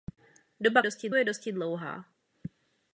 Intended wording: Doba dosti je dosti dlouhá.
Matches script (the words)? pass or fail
pass